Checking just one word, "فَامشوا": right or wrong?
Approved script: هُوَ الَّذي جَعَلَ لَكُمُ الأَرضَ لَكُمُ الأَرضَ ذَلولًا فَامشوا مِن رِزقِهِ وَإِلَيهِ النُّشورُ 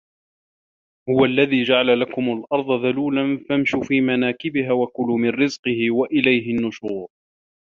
wrong